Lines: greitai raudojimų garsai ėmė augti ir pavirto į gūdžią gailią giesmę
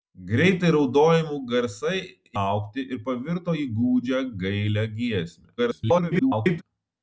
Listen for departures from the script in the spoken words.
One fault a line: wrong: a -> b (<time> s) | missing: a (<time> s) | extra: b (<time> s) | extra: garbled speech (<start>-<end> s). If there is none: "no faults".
missing: ėmė (2.0 s)
extra: garbled speech (5.6-6.6 s)